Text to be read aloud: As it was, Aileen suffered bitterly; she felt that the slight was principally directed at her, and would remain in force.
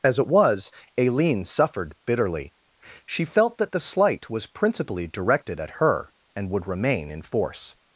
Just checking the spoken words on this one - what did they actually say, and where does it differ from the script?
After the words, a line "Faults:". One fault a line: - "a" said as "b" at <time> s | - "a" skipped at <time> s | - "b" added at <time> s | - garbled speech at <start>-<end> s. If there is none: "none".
As it was, Aileen suffered bitterly; she felt that the slight was principally directed at her, and would remain in force.
Faults:
none